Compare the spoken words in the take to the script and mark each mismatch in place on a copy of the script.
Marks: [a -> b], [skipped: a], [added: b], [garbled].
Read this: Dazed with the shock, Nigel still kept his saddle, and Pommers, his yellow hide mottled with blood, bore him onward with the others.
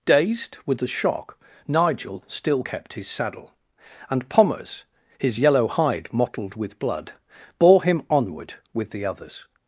Dazed with the shock, Nigel still kept his saddle, and Pommers, his yellow hide mottled with blood, bore him onward with the others.